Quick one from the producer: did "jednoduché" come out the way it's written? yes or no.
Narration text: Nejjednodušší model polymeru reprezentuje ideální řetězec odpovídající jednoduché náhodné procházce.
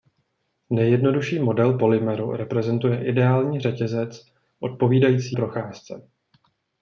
no